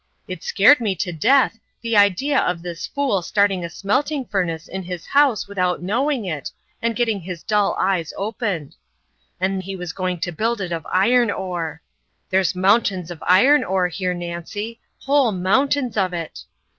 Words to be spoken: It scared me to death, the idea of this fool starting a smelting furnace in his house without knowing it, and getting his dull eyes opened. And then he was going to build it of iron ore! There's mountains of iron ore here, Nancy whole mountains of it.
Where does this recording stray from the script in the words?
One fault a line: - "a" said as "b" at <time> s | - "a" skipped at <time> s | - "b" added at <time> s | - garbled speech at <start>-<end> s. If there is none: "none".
- "then" skipped at 9.6 s